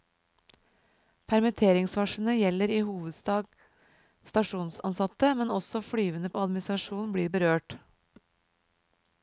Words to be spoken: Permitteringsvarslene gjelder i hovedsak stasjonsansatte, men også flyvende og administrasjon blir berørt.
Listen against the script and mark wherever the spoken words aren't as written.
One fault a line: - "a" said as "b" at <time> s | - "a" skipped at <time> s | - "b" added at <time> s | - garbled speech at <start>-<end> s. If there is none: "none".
none